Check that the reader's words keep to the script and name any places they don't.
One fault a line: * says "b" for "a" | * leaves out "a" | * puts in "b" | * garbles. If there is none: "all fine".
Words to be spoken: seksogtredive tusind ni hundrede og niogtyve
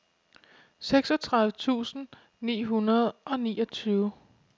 all fine